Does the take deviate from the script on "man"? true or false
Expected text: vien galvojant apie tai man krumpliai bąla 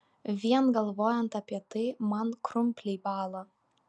false